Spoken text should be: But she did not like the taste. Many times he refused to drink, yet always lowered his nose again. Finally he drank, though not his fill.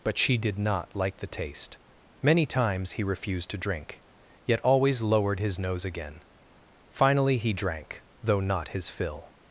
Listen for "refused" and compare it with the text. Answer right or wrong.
right